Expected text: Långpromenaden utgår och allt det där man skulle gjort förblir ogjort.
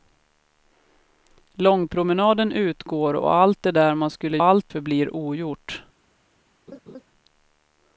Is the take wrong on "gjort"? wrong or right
wrong